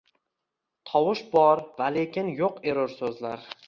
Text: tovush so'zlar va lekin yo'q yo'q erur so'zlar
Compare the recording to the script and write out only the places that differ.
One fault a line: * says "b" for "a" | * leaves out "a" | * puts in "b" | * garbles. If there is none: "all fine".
* says "bor" for "so'zlar"
* leaves out "yo'q"